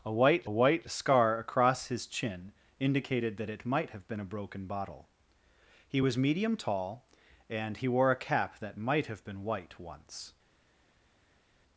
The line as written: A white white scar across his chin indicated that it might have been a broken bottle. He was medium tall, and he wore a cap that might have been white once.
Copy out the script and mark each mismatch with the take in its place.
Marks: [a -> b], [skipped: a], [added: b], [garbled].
A white white scar across his chin indicated that it might have been a broken bottle. He was medium tall, and he wore a cap that might have been white once.